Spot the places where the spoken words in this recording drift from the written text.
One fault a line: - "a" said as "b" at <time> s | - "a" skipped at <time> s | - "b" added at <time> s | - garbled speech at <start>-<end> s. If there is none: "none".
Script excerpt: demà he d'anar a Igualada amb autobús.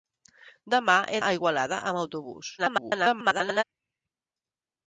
- "d'anar" skipped at 1.2 s
- garbled speech at 2.6-3.6 s